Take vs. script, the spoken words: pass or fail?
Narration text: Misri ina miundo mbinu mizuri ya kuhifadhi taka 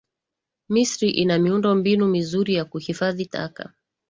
pass